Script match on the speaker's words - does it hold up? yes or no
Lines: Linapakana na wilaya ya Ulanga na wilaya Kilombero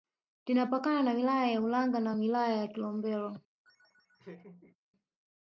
no